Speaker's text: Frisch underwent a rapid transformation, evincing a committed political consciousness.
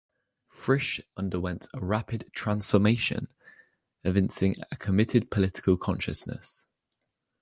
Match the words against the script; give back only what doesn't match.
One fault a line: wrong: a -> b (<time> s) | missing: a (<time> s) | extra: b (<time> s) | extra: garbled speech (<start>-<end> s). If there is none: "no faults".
no faults